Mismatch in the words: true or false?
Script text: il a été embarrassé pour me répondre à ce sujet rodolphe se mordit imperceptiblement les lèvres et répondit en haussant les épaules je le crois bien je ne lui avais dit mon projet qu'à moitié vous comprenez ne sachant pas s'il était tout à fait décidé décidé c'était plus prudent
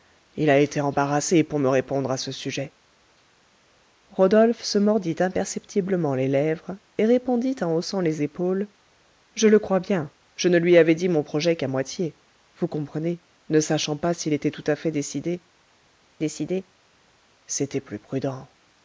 false